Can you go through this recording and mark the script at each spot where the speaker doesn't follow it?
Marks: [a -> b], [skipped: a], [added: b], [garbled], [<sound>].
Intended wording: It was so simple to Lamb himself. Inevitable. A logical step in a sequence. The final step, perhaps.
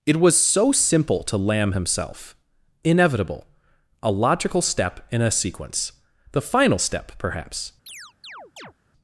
It was so simple to Lamb himself. Inevitable. A logical step in a sequence. The final step, perhaps. [chirp]